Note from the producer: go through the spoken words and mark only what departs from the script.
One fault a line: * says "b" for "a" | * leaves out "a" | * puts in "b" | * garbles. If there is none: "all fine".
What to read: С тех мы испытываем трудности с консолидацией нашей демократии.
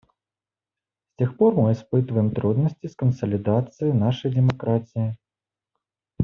* puts in "пор"